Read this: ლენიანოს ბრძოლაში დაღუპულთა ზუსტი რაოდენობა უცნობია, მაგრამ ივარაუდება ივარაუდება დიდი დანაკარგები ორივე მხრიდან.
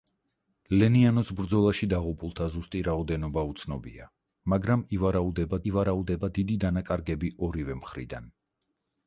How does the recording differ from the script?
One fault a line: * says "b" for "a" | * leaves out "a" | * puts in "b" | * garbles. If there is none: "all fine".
all fine